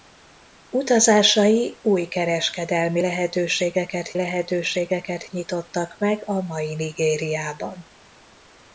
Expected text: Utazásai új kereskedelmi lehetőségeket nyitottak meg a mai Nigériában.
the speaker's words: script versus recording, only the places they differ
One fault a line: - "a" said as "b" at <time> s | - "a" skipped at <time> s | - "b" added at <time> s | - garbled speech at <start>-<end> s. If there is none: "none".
- "lehetőségeket" added at 4.1 s